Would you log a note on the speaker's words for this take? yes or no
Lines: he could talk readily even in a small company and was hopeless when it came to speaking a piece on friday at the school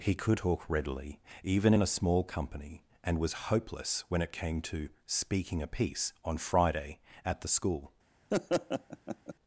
no